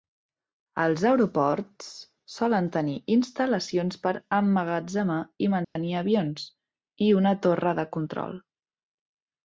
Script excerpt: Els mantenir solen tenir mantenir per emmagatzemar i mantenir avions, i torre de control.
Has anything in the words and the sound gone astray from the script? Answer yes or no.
yes